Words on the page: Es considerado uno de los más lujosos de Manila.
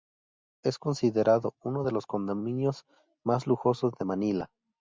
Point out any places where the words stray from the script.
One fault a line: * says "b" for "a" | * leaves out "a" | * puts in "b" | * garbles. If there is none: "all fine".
* puts in "condominios"